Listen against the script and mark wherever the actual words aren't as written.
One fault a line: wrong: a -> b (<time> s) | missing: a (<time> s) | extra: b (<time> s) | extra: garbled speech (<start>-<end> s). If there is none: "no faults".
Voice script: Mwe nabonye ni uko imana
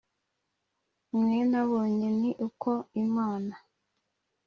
no faults